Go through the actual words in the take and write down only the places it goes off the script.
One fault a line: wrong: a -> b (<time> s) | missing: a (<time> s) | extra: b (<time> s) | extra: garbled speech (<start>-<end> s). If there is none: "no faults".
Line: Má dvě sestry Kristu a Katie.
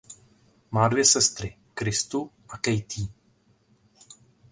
no faults